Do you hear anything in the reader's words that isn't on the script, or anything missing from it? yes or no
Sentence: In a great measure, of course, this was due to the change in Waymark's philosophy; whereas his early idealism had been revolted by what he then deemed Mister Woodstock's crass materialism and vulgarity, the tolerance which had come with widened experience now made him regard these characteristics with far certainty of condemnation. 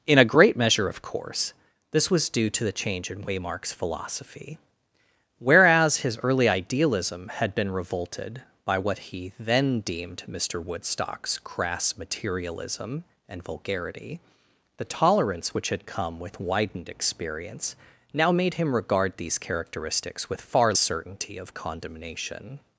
no